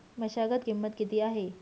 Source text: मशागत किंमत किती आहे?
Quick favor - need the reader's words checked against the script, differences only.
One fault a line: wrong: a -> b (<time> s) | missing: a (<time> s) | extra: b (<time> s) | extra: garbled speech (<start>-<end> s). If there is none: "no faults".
no faults